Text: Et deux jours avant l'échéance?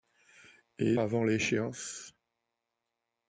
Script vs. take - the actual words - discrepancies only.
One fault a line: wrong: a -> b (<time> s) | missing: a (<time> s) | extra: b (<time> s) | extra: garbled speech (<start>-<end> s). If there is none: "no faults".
missing: deux jours (1.0 s)